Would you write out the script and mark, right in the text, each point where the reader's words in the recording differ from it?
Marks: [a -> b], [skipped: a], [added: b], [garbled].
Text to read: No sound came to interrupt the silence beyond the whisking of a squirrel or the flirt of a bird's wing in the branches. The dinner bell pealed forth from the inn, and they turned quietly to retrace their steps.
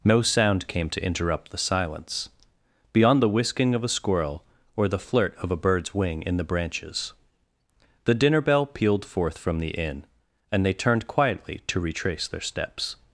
No sound came to interrupt the silence beyond the whisking of a squirrel or the flirt of a bird's wing in the branches. The dinner bell pealed forth from the inn, and they turned quietly to retrace their steps.